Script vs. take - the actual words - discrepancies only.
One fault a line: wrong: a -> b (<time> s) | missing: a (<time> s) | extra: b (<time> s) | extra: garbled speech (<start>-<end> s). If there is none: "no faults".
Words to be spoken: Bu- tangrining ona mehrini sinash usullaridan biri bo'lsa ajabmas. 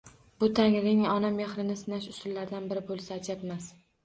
no faults